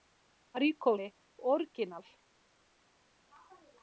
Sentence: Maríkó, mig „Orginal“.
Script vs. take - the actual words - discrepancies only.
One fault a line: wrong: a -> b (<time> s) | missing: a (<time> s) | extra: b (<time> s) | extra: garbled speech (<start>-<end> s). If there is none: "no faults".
no faults